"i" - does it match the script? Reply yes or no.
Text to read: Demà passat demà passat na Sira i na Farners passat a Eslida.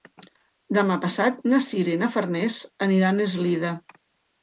yes